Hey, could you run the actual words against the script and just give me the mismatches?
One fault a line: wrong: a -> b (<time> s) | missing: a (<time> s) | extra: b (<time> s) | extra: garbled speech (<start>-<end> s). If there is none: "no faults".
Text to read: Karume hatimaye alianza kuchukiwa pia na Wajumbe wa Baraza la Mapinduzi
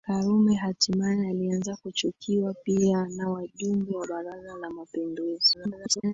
extra: garbled speech (5.5-6.1 s)